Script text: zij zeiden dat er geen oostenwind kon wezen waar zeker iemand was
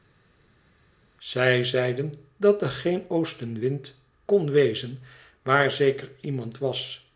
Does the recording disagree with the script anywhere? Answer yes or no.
no